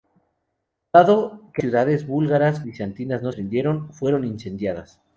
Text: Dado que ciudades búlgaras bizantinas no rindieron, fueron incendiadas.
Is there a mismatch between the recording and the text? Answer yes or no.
no